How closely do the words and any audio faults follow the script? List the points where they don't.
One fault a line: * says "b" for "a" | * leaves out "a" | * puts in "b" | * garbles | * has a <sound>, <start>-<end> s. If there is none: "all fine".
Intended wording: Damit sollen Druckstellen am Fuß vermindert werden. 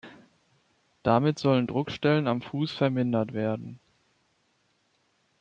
all fine